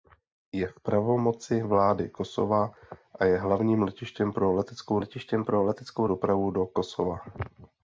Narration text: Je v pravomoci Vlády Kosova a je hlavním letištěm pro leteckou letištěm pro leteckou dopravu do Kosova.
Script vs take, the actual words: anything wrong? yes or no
no